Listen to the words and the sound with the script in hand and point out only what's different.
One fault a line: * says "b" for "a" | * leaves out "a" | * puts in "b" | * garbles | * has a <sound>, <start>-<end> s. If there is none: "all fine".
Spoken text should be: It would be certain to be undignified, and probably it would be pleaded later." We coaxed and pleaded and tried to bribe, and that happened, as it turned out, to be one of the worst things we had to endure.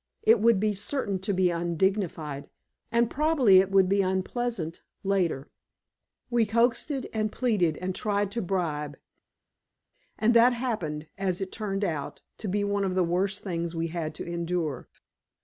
* says "unpleasant" for "pleaded"